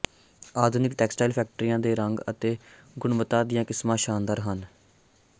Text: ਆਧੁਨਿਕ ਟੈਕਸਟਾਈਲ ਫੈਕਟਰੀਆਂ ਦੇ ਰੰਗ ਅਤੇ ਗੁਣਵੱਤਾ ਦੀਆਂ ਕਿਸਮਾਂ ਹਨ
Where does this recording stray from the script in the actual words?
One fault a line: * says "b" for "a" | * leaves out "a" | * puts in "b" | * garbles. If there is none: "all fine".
* puts in "ਸ਼ਾਨਦਾਰ"